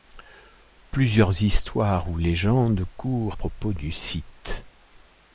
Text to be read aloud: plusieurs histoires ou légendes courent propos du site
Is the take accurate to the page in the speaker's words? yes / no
yes